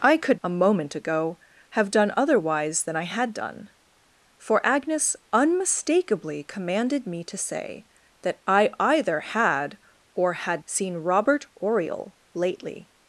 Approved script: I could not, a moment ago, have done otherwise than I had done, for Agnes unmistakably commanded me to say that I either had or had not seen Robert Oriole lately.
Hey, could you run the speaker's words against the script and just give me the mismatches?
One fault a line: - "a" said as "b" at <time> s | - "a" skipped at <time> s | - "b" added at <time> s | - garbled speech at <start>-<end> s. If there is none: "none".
- "not" skipped at 0.4 s
- "not" skipped at 10.6 s